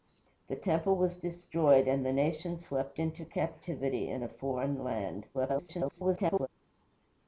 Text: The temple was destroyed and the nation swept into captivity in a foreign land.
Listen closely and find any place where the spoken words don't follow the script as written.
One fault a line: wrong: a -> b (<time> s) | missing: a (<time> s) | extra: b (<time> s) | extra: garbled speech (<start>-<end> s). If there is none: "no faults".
extra: garbled speech (5.3-6.5 s)